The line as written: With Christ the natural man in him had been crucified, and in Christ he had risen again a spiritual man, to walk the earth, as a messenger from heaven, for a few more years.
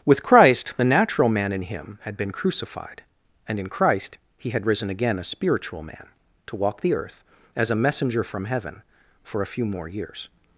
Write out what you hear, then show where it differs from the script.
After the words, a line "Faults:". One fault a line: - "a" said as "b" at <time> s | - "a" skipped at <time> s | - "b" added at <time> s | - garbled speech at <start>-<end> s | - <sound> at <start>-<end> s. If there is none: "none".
With Christ the natural man in him had been crucified, and in Christ he had risen again a spiritual man, to walk the earth, as a messenger from heaven, for a few more years.
Faults:
none